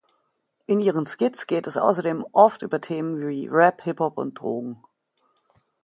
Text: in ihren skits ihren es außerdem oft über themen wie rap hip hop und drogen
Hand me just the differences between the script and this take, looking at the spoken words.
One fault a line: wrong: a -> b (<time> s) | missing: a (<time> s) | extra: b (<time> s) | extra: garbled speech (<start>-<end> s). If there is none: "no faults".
wrong: ihren -> geht (1.4 s)